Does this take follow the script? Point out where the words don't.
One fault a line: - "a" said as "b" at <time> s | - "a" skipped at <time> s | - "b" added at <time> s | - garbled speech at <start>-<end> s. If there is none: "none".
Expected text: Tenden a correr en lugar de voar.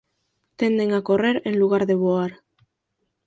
none